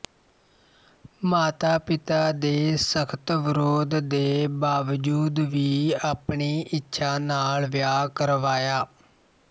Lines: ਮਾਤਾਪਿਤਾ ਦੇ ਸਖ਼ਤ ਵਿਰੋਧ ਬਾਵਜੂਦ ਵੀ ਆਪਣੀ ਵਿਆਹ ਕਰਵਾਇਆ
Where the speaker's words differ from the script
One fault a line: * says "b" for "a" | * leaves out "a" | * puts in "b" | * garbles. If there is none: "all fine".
* puts in "ਦੇ"
* puts in "ਇੱਛਾ ਨਾਲ"